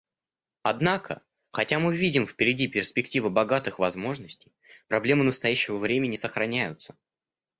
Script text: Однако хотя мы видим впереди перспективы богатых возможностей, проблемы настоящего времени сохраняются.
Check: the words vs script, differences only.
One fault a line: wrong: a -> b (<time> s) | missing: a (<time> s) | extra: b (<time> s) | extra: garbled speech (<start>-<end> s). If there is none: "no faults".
no faults